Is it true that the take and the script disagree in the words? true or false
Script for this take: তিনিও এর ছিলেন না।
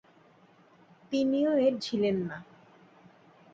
false